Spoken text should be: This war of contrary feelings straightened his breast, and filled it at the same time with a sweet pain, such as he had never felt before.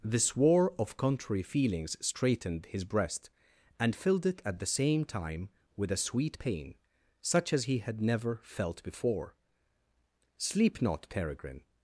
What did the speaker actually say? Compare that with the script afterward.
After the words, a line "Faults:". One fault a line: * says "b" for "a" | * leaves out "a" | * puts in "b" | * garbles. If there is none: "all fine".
This war of contrary feelings straightened his breast, and filled it at the same time with a sweet pain, such as he had never felt before. "Sleep not, Peregrine
Faults:
* puts in "Sleep not Peregrine"